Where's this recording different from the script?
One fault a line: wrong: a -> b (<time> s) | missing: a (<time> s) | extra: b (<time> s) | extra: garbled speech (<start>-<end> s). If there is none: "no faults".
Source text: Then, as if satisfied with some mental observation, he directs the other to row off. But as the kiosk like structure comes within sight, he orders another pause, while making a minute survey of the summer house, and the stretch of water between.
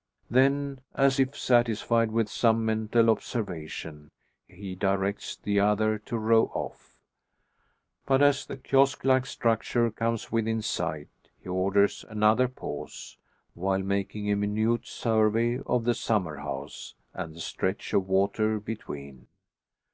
no faults